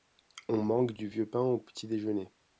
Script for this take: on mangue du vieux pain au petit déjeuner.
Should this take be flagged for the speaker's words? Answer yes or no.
no